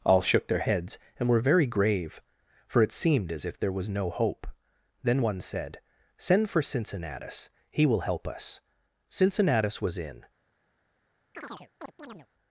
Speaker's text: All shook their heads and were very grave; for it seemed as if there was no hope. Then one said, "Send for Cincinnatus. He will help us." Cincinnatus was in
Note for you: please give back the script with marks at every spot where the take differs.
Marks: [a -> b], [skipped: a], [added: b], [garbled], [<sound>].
All shook their heads and were very grave; for it seemed as if there was no hope. Then one said, "Send for Cincinnatus. He will help us." Cincinnatus was in [chirp]